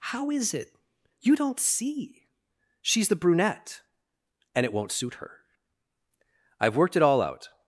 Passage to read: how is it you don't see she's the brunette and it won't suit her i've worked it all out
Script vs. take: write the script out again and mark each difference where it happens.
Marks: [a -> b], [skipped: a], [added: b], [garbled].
how is it you don't see she's the brunette and it won't suit her i've worked it all out